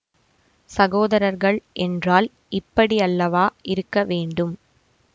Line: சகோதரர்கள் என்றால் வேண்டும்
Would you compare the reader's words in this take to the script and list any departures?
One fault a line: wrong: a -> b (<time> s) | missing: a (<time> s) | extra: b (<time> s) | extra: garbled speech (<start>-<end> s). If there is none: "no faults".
extra: இப்படியல்லவா இருக்க (2.5 s)